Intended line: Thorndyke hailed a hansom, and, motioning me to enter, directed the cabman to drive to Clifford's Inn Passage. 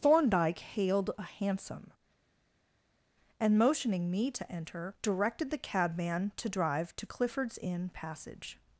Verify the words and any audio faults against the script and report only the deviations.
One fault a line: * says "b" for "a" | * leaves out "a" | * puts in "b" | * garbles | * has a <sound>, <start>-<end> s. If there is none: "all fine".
all fine